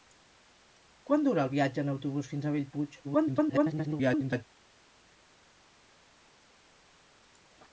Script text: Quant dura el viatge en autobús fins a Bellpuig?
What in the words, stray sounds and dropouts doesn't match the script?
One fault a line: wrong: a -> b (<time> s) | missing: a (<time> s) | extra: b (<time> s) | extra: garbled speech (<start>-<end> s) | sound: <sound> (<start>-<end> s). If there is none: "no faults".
extra: garbled speech (3.0-4.4 s)